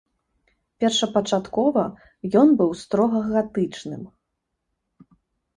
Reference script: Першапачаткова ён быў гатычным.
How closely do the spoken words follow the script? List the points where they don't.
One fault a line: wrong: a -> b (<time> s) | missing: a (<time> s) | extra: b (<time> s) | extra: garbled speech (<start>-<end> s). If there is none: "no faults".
extra: строга (2.8 s)